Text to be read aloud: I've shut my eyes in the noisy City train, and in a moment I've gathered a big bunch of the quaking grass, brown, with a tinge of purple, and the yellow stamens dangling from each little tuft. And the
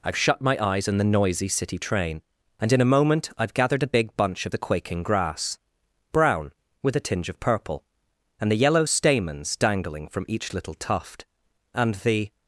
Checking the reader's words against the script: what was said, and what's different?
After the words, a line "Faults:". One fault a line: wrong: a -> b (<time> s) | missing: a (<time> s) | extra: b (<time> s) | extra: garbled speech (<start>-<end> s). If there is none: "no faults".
I've shut my eyes in the noisy City train, and in a moment I've gathered a big bunch of the quaking grass, brown, with a tinge of purple, and the yellow stamens dangling from each little tuft. And the
Faults:
no faults